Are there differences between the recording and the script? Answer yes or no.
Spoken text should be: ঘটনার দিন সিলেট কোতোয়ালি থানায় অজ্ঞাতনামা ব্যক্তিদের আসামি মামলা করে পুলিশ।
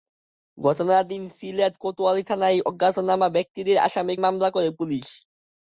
no